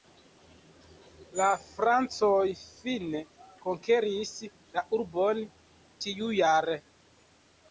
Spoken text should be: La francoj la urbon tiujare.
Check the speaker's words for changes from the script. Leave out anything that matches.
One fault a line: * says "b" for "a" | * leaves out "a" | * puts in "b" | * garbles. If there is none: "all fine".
* puts in "fine konkeris"